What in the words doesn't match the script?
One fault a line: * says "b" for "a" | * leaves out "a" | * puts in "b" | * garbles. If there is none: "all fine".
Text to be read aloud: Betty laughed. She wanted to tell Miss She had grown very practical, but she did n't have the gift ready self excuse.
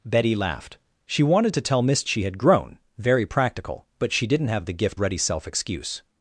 all fine